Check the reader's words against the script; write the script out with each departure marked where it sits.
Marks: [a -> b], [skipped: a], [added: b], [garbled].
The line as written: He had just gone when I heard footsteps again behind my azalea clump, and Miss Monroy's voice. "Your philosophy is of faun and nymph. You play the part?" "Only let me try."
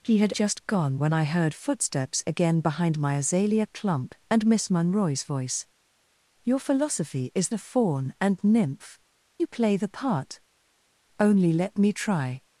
He had just gone when I heard footsteps again behind my azalea clump, and Miss Monroy's voice. "Your philosophy is of faun and nymph. You play the part?" "Only let me try."